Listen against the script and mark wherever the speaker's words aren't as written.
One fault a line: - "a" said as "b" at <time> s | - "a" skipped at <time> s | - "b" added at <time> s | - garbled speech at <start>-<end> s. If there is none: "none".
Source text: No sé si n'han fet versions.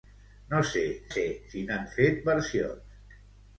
- "sé" added at 1.1 s